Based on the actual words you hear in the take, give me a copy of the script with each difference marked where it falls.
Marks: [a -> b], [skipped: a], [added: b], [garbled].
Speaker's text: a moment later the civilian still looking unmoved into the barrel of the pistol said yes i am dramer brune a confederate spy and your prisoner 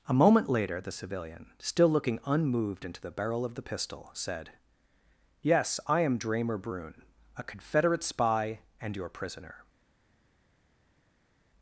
a moment later the civilian still looking unmoved into the barrel of the pistol said yes i am dramer brune a confederate spy and your prisoner